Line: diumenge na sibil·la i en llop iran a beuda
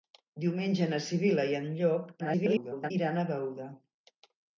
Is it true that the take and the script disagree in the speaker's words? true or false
true